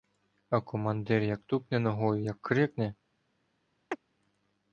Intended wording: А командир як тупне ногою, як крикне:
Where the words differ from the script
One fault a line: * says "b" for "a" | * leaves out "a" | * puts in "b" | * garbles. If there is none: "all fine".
all fine